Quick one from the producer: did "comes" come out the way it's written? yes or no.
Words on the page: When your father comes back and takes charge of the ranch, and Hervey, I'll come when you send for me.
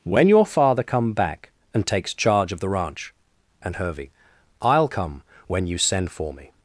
no